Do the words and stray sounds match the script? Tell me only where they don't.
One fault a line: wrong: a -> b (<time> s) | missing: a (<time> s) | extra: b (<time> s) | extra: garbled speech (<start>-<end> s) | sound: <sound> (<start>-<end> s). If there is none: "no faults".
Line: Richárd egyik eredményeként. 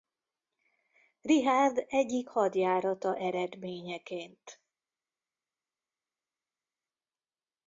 extra: hadjárata (2.3 s)